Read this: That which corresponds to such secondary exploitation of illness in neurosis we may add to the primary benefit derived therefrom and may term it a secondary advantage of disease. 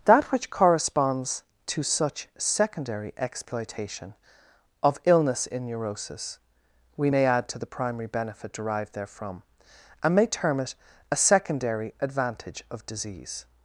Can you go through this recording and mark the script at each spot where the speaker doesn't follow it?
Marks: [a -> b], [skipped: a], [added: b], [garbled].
That which corresponds to such secondary exploitation of illness in neurosis we may add to the primary benefit derived therefrom and may term it a secondary advantage of disease.